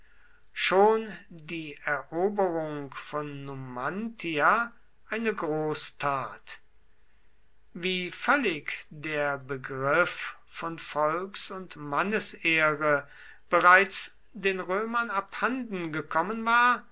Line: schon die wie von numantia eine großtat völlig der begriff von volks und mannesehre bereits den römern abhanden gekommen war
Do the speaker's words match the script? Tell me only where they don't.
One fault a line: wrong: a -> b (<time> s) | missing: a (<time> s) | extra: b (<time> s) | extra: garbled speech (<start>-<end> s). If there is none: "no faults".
wrong: wie -> eroberung (1.9 s)
extra: wie (7.8 s)